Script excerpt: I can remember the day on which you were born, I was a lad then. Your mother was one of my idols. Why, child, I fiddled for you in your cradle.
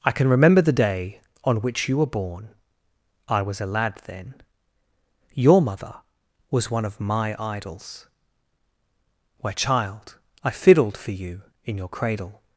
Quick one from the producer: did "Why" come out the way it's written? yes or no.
no